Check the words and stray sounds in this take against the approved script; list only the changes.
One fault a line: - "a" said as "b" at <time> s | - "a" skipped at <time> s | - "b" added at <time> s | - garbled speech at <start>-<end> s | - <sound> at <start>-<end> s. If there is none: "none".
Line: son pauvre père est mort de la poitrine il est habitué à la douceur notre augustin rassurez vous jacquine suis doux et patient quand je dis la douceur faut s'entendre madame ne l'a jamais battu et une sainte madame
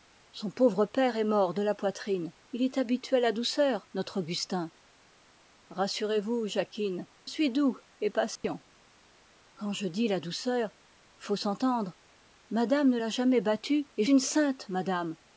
- dropout at 8.4-8.4 s